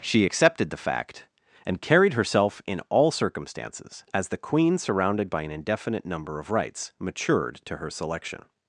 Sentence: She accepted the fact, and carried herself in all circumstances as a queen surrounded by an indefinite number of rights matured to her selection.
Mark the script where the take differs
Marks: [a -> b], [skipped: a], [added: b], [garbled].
She accepted the fact, and carried herself in all circumstances as [a -> the] queen surrounded by an indefinite number of rights matured to her selection.